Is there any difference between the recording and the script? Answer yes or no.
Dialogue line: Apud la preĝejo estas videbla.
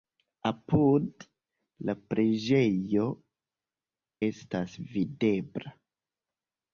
no